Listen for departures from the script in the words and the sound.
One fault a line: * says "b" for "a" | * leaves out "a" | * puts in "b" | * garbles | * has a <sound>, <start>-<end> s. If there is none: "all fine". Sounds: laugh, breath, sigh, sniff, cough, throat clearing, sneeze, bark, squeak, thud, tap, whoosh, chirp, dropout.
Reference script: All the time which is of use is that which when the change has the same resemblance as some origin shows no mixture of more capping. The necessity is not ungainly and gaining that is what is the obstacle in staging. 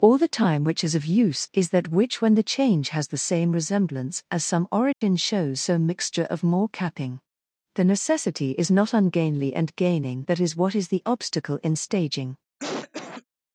* has a dropout, 4.9-5.0 s
* says "so" for "no"
* has a cough, 12.6-13.2 s